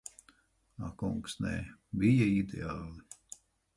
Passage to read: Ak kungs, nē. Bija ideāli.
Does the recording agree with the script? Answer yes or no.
yes